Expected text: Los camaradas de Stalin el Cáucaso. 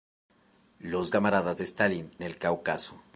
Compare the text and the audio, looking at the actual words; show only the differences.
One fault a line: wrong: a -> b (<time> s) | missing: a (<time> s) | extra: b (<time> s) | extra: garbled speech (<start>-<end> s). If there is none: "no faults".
no faults